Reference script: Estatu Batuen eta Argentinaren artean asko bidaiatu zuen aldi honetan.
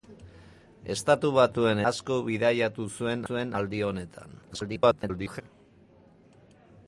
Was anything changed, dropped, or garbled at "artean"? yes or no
yes